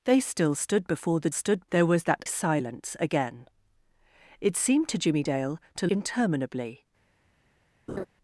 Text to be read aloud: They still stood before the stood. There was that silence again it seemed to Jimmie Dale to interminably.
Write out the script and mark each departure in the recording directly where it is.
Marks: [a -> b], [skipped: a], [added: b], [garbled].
They still stood before the stood. There was that silence again it seemed to Jimmie Dale to interminably.